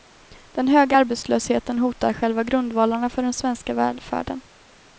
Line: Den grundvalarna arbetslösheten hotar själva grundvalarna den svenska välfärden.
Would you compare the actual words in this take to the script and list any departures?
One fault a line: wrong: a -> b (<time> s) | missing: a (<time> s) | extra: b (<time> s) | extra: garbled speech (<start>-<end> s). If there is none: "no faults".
wrong: grundvalarna -> höga (0.7 s)
extra: för (3.1 s)